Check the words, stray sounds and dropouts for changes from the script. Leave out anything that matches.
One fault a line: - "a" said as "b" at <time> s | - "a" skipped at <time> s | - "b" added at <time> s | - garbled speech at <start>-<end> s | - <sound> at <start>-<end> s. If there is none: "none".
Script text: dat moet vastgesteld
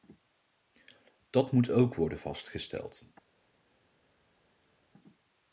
- "ook worden" added at 1.7 s